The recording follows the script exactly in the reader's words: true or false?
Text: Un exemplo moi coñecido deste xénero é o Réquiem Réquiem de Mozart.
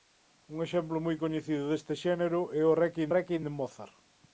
true